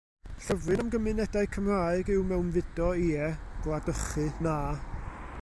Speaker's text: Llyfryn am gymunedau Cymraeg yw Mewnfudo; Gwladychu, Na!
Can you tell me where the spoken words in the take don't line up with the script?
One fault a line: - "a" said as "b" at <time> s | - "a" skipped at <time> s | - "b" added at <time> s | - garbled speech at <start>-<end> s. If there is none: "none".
- "Ie" added at 3.1 s